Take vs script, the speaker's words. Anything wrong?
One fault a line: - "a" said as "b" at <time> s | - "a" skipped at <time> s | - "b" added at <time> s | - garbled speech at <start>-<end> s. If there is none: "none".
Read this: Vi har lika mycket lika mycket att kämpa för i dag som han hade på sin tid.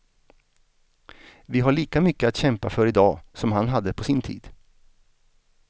- "lika mycket" skipped at 2.3 s